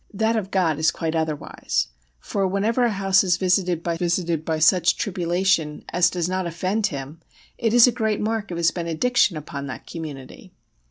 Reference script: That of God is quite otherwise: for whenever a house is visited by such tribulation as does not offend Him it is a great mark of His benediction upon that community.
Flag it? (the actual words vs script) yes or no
yes